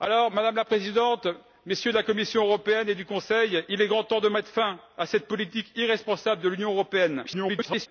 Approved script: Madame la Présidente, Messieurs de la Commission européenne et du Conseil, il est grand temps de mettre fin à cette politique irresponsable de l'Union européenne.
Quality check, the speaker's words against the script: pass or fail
fail